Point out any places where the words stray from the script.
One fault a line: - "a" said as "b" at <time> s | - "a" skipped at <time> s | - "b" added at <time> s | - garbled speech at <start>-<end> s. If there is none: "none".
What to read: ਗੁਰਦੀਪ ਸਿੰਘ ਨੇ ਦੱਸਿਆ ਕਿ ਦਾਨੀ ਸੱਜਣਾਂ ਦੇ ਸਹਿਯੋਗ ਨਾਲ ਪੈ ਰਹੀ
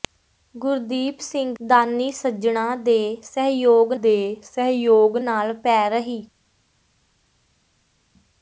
- "ਨੇ ਦੱਸਿਆ ਕਿ ਦਾਨੀ ਸੱਜਣਾਂ" said as "ਦਾਨੀ ਸੱਜਣਾਂ ਦੇ ਸਹਿਯੋਗ" at 1.6 s